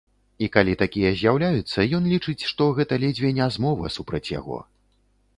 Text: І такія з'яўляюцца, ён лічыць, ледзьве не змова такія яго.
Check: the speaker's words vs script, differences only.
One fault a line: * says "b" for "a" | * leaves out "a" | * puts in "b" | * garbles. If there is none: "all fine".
* puts in "калі"
* puts in "што гэта"
* says "супраць" for "такія"